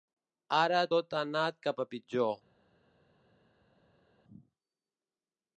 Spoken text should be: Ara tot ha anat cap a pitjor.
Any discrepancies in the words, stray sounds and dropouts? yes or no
no